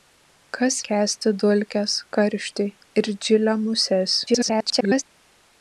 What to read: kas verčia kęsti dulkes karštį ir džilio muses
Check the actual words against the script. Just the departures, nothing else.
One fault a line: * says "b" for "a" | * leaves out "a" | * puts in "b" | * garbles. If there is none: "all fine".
* leaves out "verčia"
* garbles